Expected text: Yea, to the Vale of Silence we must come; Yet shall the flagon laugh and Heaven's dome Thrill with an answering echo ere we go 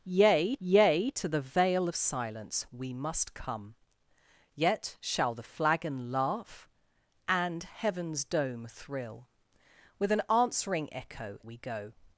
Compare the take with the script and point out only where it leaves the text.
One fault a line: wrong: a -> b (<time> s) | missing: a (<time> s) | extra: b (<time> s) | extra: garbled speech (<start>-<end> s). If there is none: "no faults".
extra: yea (0.6 s)
missing: ere (11.4 s)